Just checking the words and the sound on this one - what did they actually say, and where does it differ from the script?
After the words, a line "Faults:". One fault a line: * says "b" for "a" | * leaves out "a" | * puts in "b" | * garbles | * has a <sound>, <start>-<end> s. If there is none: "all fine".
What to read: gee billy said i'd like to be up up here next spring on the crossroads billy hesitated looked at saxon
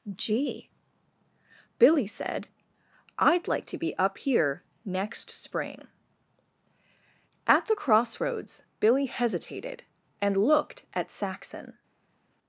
gee billy said i'd like to be up here next spring at the crossroads billy hesitated and looked at saxon
Faults:
* leaves out "up"
* says "at" for "on"
* puts in "and"